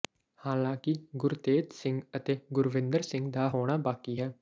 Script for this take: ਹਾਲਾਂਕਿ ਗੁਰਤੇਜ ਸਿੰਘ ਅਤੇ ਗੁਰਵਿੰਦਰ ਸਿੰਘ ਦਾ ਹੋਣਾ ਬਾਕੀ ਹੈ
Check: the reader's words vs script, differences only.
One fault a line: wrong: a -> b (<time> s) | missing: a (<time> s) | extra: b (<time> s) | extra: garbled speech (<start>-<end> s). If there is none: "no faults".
no faults